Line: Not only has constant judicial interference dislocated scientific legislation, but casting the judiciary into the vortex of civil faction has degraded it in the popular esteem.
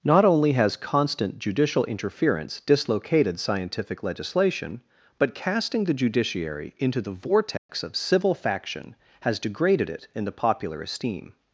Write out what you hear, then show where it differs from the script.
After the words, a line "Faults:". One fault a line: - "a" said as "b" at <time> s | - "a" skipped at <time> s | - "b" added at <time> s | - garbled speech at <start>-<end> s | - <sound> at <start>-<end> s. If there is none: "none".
Not only has constant judicial interference dislocated scientific legislation, but casting the judiciary into the vortex of civil faction has degraded it in the popular esteem.
Faults:
- dropout at 7.6-7.7 s